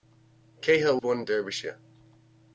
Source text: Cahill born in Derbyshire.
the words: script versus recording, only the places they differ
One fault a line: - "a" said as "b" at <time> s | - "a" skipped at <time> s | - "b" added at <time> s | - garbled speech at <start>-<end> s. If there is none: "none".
none